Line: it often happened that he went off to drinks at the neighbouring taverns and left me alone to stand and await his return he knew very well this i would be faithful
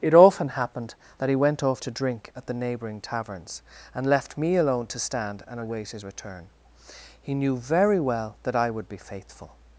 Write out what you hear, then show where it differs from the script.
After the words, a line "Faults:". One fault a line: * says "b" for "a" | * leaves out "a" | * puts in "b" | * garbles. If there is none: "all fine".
it often happened that he went off to drink at the neighbouring taverns and left me alone to stand and await his return he knew very well that i would be faithful
Faults:
* says "drink" for "drinks"
* says "that" for "this"